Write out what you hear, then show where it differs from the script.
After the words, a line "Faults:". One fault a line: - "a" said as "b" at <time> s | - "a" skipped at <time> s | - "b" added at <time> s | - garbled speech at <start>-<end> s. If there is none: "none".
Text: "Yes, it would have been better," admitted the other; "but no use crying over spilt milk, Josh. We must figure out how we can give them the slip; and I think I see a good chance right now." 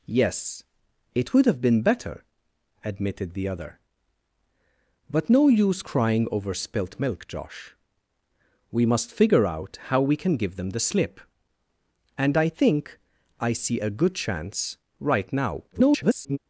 "Yes, it would have been better," admitted the other; "but no use crying over spilt milk, Josh. We must figure out how we can give them the slip; and I think I see a good chance right now." [garbled]
Faults:
- garbled speech at 15.7-16.4 s